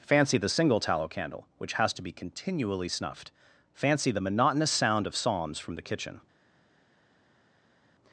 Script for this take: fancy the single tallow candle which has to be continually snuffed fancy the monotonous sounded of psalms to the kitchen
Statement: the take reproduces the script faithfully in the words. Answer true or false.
false